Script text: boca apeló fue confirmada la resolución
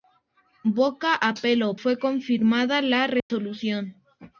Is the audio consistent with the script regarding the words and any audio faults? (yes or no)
no